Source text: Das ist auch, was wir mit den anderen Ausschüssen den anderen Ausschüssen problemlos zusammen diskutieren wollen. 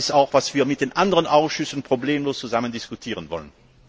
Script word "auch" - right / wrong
right